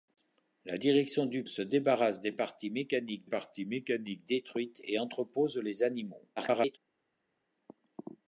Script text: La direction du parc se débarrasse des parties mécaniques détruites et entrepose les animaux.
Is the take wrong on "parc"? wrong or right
wrong